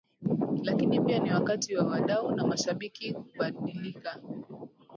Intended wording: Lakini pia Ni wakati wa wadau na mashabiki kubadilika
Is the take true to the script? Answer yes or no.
yes